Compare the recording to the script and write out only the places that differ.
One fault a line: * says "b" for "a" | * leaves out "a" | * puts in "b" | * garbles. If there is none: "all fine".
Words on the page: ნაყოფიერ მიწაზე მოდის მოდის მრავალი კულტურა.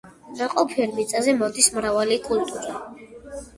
* leaves out "მოდის"